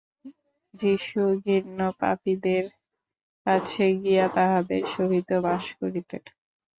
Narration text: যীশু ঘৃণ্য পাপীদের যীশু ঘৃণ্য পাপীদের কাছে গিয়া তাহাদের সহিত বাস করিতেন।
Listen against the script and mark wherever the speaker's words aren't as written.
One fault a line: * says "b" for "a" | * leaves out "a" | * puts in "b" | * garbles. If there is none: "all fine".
* leaves out "যীশু ঘৃণ্য পাপীদের"